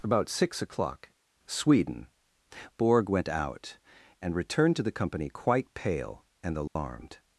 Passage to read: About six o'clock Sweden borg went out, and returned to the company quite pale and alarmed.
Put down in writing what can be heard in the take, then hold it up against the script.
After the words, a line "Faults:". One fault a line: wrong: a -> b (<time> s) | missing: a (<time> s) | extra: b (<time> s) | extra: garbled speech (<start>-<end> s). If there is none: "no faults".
About six o'clock Sweden borg went out, and returned to the company quite pale and alarmed.
Faults:
no faults